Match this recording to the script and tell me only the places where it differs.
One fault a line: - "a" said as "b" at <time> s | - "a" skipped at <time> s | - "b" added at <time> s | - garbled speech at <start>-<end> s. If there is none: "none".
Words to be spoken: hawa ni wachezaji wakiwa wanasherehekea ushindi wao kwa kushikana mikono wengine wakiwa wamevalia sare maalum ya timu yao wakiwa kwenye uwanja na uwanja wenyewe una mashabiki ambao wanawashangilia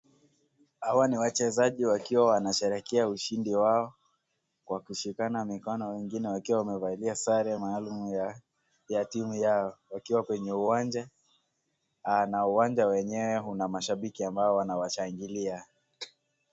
none